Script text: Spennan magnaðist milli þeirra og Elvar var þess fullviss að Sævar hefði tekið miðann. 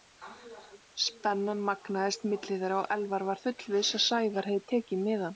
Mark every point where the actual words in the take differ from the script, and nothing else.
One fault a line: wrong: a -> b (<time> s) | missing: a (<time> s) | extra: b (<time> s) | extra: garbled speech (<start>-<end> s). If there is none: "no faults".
missing: þess (3.5 s)